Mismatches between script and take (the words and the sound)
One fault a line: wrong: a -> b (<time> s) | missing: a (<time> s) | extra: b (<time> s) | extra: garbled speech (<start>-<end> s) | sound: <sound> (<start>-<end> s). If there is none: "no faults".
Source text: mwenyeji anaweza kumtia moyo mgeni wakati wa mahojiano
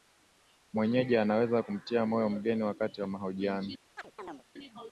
sound: chirp (4.0-4.4 s)